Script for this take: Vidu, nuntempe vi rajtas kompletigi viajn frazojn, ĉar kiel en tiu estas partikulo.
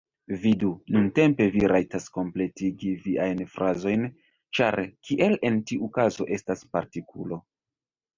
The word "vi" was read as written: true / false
true